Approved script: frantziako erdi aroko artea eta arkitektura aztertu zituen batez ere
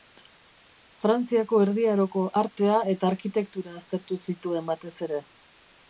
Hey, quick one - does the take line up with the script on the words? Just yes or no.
yes